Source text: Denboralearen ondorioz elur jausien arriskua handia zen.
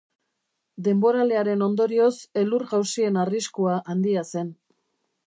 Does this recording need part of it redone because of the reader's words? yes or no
no